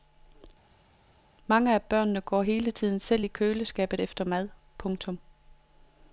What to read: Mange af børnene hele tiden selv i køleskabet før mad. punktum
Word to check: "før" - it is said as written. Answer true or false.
false